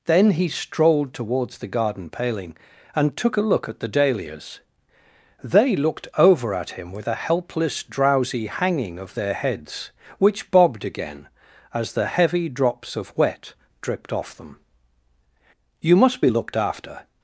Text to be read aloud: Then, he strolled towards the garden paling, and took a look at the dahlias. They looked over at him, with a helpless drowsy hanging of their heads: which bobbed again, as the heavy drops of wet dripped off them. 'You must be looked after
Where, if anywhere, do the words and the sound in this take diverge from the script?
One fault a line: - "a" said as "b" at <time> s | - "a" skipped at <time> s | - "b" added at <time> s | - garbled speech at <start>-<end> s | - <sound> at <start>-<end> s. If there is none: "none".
none